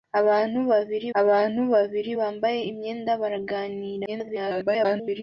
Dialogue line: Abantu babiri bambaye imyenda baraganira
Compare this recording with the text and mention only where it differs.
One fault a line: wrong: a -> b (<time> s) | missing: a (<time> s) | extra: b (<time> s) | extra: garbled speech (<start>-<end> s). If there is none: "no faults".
extra: abantu babiri (1.2 s)
extra: garbled speech (4.1-5.2 s)